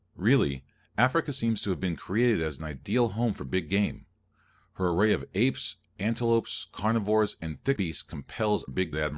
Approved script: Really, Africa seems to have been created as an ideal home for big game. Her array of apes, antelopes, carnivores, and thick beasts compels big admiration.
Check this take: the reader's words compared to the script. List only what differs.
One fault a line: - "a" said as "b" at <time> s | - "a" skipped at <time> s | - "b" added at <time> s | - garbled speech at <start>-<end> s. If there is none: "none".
none